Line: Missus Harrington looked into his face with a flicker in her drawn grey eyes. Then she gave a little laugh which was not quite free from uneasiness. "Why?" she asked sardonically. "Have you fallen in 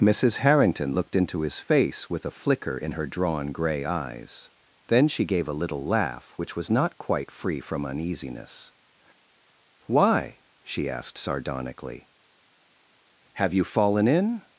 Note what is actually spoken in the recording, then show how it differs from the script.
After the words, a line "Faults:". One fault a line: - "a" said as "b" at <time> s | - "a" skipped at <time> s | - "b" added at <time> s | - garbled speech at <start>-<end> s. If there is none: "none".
Missus Harrington looked into his face with a flicker in her drawn grey eyes. Then she gave a little laugh which was not quite free from uneasiness. "Why?" she asked sardonically. "Have you fallen in
Faults:
none